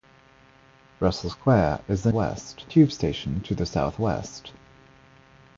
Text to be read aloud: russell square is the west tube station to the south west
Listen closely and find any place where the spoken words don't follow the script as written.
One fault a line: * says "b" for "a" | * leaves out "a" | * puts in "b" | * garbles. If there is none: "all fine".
all fine